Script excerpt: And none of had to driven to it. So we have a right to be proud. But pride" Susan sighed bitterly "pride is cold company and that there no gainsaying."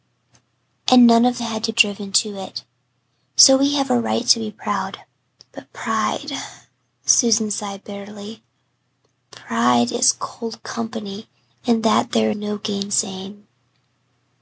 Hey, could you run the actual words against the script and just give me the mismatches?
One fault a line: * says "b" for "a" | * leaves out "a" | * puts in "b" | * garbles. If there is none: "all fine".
all fine